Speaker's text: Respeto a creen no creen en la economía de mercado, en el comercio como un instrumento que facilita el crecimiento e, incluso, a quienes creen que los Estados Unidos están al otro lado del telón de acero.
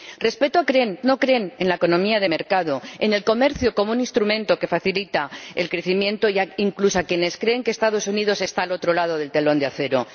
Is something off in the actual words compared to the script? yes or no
no